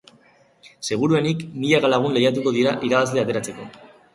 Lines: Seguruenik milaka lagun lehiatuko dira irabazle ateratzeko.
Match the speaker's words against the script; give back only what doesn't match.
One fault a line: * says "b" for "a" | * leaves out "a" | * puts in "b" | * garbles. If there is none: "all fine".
all fine